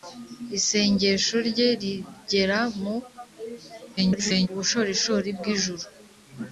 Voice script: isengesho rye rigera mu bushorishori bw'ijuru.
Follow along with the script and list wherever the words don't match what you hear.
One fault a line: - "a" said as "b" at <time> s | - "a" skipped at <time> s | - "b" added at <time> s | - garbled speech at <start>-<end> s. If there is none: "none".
- garbled speech at 4.0-4.5 s